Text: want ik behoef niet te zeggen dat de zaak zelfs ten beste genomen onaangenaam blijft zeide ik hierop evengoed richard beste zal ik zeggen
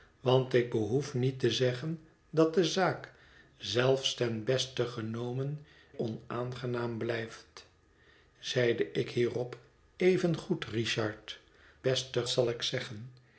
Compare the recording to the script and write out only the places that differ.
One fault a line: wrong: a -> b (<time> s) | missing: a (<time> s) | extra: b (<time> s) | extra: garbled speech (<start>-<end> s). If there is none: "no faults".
no faults